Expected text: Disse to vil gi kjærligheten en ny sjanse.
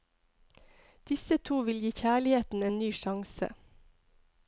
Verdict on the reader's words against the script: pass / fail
pass